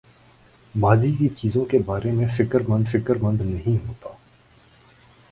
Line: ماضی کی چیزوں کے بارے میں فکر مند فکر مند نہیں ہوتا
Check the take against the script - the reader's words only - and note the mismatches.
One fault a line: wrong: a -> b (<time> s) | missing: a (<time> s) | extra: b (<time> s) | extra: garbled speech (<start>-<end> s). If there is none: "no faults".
no faults